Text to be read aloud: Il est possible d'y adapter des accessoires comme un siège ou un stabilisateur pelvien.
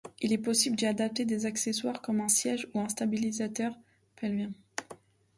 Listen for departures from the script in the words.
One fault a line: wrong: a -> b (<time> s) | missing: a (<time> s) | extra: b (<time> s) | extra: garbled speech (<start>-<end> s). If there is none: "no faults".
no faults